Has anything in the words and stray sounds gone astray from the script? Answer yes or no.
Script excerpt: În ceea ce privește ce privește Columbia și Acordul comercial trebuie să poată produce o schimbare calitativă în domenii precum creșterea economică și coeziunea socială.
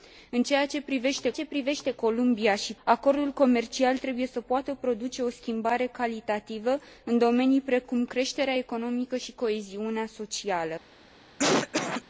yes